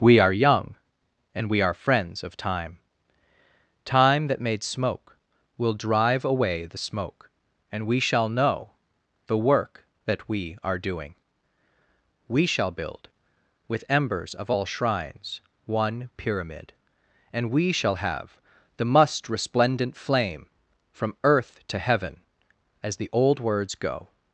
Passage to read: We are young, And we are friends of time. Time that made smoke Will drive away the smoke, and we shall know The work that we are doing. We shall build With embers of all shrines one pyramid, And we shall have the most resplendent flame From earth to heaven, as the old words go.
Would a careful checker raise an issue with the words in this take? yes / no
yes